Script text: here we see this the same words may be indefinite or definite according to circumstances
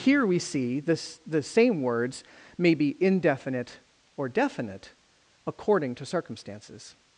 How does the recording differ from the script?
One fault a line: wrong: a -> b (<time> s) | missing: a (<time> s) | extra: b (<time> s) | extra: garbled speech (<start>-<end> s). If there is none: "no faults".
no faults